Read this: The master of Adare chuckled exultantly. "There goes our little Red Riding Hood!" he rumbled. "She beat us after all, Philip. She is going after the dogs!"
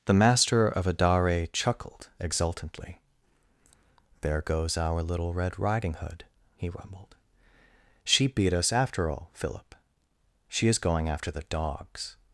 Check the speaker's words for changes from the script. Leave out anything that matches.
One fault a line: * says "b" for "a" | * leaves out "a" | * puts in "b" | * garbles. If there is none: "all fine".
all fine